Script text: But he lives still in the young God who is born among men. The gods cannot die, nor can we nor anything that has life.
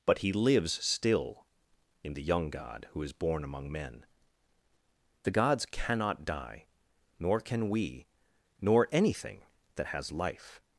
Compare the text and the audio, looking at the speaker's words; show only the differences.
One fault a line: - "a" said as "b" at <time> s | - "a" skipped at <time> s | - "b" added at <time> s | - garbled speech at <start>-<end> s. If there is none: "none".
none